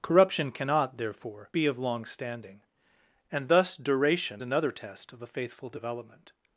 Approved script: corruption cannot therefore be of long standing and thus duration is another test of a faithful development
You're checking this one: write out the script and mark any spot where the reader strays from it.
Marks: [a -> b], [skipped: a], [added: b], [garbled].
corruption cannot therefore be of long standing and thus duration [skipped: is] another test of a faithful development